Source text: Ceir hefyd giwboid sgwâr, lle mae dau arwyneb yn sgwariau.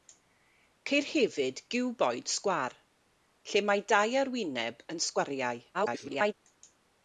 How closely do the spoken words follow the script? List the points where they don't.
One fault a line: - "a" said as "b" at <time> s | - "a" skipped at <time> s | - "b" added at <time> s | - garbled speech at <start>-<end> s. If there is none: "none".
- garbled speech at 5.7-6.3 s